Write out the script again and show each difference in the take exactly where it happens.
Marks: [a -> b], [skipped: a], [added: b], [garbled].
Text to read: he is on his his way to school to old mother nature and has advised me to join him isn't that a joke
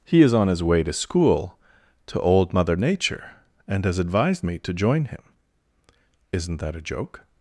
he is on his [skipped: his] way to school to old mother nature and has advised me to join him isn't that a joke